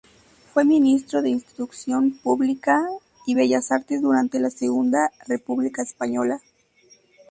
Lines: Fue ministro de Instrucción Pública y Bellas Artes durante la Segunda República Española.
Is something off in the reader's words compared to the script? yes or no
no